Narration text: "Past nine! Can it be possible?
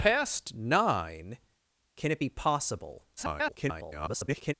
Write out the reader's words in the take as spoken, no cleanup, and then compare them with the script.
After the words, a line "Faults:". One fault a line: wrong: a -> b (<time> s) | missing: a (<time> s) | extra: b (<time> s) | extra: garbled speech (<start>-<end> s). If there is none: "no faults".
"Past nine! Can it be possible? [garbled]
Faults:
extra: garbled speech (3.2-4.5 s)